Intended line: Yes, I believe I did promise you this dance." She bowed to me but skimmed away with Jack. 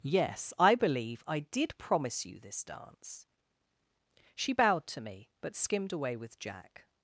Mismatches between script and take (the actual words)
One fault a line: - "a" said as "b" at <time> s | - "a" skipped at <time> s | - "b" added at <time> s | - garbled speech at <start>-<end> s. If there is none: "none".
none